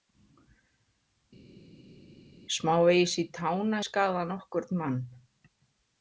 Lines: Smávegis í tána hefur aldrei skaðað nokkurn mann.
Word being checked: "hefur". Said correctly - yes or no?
no